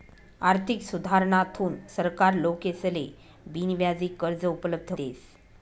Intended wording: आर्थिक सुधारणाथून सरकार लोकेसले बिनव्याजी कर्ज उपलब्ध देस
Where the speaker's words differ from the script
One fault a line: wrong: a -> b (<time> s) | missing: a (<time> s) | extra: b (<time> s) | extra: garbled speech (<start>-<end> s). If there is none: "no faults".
no faults